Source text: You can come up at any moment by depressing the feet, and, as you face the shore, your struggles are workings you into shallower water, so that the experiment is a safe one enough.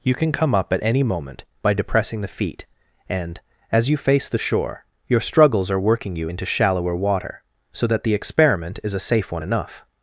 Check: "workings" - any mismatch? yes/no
yes